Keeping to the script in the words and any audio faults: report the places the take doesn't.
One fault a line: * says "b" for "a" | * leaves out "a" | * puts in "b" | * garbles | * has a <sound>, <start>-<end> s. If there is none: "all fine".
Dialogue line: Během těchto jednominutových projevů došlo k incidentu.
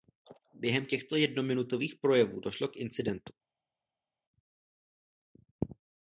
all fine